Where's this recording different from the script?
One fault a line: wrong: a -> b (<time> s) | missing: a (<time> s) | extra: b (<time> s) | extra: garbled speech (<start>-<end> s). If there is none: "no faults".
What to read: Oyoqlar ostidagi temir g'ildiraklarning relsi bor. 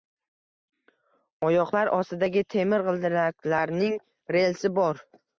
no faults